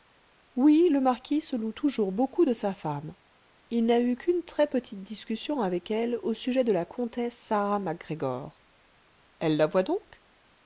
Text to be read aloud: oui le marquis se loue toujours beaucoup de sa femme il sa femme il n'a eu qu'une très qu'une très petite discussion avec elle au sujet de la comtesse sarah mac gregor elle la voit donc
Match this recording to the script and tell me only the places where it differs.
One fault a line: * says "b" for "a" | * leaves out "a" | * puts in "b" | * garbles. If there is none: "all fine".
* leaves out "sa femme il"
* leaves out "qu'une très"